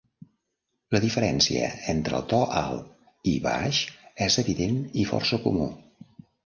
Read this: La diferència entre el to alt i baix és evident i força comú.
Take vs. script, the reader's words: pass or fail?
pass